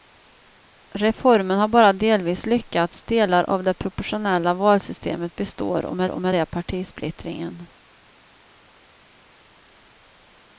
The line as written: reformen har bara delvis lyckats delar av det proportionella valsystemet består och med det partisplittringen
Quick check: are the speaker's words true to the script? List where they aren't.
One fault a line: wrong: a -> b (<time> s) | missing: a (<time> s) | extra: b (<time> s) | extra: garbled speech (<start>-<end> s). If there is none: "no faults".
extra: och med (6.1 s)